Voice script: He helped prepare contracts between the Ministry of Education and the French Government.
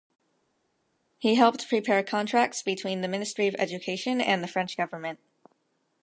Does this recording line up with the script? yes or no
yes